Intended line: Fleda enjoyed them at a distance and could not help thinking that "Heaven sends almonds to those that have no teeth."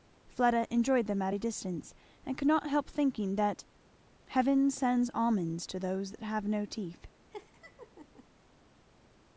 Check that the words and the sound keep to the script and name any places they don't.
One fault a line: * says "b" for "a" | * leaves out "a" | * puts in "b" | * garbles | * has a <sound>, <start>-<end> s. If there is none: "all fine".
* has a laugh, 7.3-8.3 s